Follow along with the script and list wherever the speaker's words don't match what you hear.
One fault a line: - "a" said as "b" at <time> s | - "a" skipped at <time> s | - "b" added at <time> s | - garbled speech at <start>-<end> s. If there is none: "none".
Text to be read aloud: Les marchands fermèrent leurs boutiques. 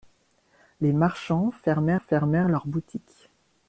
- "fermèrent" added at 2.0 s